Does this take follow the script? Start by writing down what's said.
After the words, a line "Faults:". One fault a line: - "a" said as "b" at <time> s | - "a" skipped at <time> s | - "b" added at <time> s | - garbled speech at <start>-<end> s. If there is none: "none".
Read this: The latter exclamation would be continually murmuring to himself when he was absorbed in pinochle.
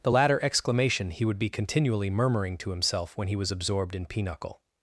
The latter exclamation he would be continually murmuring to himself when he was absorbed in pinochle.
Faults:
- "he" added at 1.1 s